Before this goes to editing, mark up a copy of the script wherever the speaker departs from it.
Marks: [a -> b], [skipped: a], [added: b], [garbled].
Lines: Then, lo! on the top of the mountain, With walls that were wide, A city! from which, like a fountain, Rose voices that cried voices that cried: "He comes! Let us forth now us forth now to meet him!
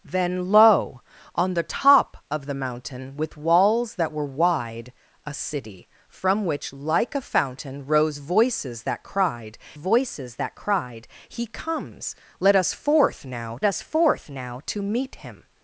Then, lo! on the top of the mountain, With walls that were wide, A city! from which, like a fountain, Rose voices that cried voices that cried: "He comes! Let us forth now us forth now to meet him!